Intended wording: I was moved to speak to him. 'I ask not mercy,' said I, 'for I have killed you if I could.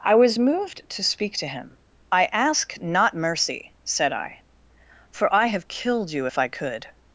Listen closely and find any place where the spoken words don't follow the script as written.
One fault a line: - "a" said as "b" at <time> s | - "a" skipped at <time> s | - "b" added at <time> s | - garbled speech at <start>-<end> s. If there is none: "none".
none